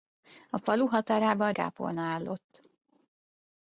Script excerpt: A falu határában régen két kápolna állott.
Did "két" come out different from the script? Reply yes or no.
yes